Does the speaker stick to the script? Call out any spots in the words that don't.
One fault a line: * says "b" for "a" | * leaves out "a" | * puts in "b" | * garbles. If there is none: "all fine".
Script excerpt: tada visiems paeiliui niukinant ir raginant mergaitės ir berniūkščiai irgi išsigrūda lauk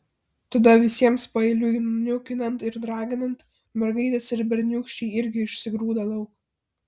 all fine